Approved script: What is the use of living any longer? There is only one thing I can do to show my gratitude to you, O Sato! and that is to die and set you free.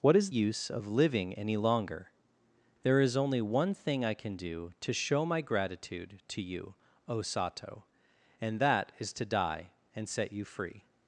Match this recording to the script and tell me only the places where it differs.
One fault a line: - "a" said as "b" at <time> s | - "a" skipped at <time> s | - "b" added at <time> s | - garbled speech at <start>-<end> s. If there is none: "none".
- "the" skipped at 0.3 s